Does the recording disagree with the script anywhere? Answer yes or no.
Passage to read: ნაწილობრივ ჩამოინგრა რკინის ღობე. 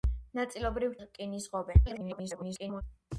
yes